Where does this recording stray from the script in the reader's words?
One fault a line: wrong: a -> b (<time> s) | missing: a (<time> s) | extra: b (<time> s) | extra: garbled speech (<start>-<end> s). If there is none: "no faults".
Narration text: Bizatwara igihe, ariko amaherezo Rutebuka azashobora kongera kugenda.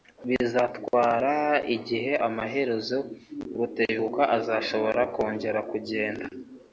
missing: ariko (2.1 s)